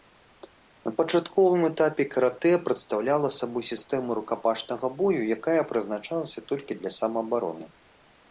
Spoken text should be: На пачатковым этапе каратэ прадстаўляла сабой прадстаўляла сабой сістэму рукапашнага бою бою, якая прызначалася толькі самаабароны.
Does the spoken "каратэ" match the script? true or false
true